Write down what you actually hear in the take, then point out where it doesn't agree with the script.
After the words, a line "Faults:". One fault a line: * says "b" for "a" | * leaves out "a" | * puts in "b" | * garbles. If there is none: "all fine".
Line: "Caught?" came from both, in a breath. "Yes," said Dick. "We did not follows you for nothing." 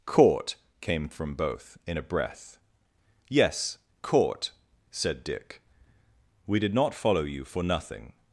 "Caught?" came from both, in a breath. "Yes, caught," said Dick. "We did not follow you for nothing."
Faults:
* puts in "caught"
* says "follow" for "follows"